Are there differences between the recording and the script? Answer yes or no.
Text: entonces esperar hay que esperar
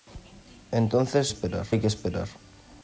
no